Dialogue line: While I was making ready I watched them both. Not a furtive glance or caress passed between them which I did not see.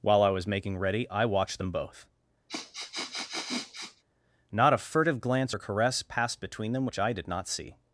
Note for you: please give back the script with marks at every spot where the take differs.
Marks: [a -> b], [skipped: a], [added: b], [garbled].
While I was making ready I watched them both. Not a furtive glance or caress passed between them which I did not see.